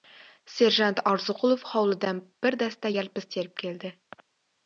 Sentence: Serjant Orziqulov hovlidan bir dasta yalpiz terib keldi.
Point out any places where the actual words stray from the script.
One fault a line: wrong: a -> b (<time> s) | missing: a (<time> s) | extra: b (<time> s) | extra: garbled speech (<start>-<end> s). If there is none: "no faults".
no faults